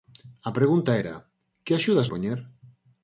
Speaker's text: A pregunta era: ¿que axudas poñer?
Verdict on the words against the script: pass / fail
pass